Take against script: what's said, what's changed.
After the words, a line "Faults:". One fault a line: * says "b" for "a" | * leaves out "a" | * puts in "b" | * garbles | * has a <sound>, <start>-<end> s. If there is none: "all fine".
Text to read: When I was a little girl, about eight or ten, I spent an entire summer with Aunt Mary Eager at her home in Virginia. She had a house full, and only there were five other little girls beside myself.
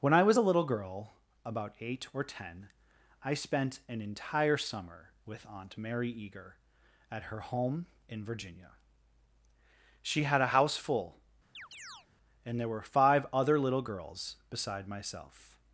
When I was a little girl, about eight or ten, I spent an entire summer with Aunt Mary Eager at her home in Virginia. She had a house full, and there were five other little girls beside myself.
Faults:
* has a chirp, 11.5-12.1 s
* leaves out "only"